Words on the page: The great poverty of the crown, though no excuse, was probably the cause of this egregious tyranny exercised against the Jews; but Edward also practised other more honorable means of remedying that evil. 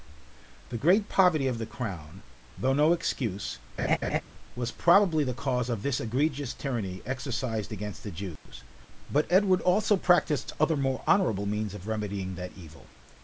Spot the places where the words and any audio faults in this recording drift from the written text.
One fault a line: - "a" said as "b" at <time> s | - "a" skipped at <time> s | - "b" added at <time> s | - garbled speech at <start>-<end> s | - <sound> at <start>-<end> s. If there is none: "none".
- laugh at 3.8-4.2 s
- dropout at 8.4-8.5 s